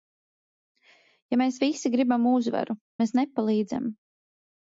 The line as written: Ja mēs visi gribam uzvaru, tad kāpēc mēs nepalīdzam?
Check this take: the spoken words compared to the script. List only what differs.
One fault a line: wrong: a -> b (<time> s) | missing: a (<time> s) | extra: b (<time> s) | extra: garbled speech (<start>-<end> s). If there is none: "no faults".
missing: tad kāpēc (2.8 s)